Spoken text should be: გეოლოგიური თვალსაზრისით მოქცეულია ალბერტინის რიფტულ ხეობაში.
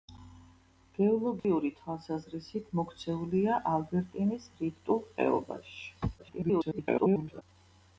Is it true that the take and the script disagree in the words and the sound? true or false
true